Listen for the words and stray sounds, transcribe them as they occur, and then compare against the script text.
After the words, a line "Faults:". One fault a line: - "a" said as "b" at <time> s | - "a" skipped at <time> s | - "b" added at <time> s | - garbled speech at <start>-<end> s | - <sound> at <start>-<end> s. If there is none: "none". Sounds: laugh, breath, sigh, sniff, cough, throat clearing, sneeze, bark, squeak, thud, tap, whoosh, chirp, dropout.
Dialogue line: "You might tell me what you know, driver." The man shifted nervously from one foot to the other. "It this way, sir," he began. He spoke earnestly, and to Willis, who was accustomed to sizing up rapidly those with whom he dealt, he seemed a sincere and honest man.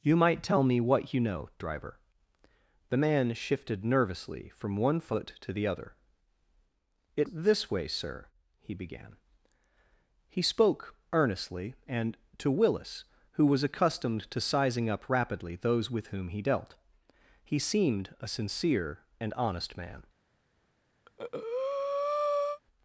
"You might tell me what you know, driver." The man shifted nervously from one foot to the other. "It this way, sir," he began. He spoke earnestly, and to Willis, who was accustomed to sizing up rapidly those with whom he dealt, he seemed a sincere and honest man.
Faults:
- breath at 21.0-22.6 s